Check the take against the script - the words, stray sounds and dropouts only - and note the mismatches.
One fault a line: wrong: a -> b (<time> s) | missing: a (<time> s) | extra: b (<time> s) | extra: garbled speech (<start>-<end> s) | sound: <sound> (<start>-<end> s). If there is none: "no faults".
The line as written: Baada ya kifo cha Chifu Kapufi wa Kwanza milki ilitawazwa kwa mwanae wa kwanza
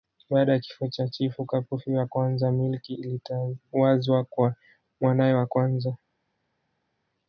no faults